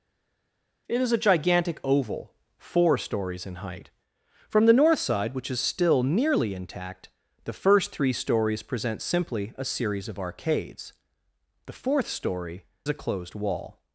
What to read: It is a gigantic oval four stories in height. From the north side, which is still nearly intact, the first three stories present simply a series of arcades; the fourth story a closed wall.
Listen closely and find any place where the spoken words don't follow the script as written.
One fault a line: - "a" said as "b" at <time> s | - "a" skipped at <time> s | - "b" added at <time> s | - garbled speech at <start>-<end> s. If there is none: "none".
none